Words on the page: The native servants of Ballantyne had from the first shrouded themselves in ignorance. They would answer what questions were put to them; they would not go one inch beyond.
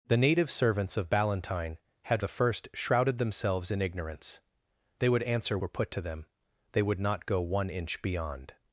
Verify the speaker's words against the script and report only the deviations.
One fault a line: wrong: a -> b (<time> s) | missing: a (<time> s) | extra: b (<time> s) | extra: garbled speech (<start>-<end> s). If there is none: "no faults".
missing: from (2.2 s)
missing: what questions (5.6 s)